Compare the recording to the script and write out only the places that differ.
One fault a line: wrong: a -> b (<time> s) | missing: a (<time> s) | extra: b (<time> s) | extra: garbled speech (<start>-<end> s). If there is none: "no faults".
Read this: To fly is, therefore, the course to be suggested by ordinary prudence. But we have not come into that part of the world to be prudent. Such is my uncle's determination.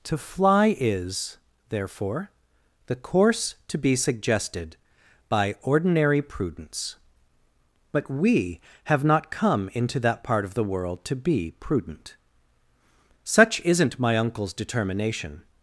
wrong: is -> isn't (13.6 s)